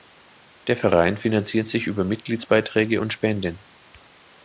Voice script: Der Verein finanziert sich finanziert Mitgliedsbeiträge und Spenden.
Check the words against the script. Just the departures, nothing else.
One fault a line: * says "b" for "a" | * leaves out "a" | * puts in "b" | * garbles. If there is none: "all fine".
* says "über" for "finanziert"